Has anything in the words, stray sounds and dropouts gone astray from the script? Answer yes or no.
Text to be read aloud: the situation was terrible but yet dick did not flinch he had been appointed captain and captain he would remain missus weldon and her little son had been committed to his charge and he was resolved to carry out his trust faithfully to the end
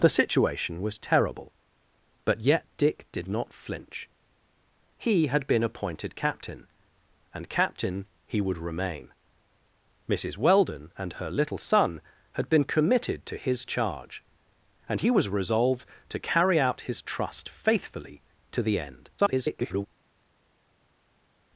yes